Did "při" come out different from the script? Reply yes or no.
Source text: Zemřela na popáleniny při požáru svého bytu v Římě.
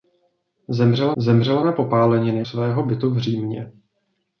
yes